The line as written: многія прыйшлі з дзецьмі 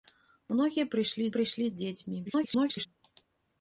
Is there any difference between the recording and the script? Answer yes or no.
yes